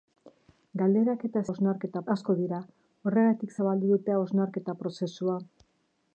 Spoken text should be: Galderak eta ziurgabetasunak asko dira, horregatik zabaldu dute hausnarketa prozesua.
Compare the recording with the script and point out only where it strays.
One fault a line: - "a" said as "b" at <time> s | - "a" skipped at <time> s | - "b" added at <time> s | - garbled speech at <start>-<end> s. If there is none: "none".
- "ziurgabetasunak" said as "hausnarketa" at 1.5 s